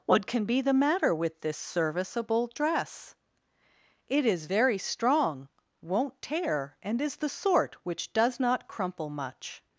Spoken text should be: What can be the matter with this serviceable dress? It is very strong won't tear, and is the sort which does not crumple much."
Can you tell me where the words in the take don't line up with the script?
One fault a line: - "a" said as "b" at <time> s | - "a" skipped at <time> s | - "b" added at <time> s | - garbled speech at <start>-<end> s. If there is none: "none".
none